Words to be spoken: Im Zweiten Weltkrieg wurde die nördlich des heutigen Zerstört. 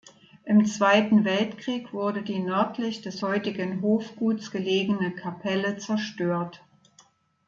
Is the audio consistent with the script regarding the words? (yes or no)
no